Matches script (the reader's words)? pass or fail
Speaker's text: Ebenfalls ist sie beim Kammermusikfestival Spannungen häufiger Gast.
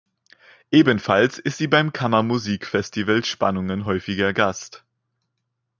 pass